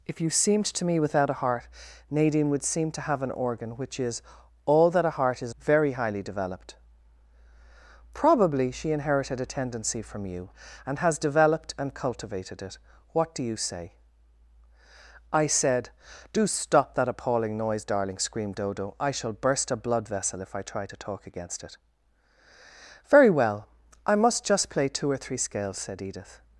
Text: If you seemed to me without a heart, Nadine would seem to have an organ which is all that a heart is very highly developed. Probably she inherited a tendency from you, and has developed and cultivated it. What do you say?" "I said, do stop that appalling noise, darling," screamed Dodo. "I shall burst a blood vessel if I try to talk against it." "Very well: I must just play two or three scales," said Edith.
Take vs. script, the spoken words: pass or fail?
pass